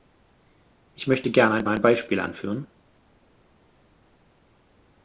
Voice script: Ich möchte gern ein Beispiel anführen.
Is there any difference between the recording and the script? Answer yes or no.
yes